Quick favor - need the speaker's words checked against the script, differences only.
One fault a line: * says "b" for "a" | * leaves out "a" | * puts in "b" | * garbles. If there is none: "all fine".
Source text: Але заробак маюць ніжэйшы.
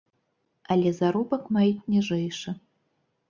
all fine